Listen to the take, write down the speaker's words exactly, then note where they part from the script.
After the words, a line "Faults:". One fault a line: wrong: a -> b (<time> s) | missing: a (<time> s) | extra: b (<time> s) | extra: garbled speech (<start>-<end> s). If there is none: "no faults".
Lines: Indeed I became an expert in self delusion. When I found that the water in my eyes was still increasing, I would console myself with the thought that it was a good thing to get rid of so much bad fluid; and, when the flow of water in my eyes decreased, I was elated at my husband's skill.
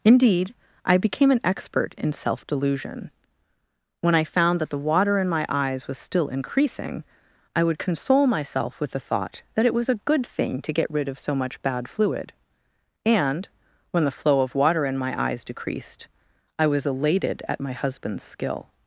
Indeed I became an expert in self delusion. When I found that the water in my eyes was still increasing, I would console myself with the thought that it was a good thing to get rid of so much bad fluid; and, when the flow of water in my eyes decreased, I was elated at my husband's skill.
Faults:
no faults